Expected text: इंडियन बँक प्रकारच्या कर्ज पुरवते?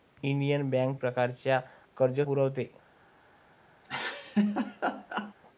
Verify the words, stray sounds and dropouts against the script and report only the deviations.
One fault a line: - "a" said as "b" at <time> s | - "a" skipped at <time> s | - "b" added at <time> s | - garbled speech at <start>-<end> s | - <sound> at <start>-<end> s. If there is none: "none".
- laugh at 3.8-5.3 s